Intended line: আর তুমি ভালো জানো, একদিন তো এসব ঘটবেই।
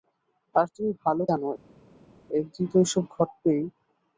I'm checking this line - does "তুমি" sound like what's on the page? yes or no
yes